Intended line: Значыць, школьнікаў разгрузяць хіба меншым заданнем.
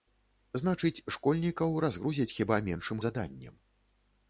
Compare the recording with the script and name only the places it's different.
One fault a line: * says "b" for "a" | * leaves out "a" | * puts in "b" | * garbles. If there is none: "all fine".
all fine